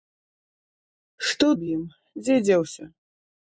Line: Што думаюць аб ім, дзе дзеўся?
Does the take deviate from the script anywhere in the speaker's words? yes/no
yes